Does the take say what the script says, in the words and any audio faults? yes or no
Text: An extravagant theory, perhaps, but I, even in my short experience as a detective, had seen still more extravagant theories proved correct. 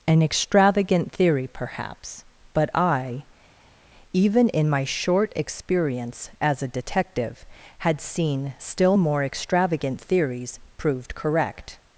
yes